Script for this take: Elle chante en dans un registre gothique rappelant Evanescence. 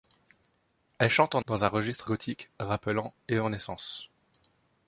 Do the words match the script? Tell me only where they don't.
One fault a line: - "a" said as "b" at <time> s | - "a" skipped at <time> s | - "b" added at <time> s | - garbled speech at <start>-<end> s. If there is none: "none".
none